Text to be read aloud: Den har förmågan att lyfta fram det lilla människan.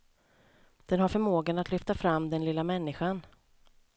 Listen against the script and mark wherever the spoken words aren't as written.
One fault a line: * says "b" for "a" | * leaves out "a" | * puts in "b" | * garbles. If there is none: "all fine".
* says "den" for "det"